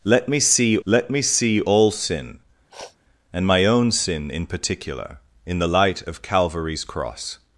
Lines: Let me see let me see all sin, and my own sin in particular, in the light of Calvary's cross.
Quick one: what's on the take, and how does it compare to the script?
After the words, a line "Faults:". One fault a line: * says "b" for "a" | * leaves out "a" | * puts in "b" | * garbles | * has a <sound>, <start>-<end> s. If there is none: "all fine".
Let me see let me see all sin, and my own sin in particular, in the light of Calvary's cross.
Faults:
* has a sniff, 2.7-3.0 s